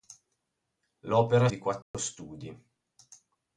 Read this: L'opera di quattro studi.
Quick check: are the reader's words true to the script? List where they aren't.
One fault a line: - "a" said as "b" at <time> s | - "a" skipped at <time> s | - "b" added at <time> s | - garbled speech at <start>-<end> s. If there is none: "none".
none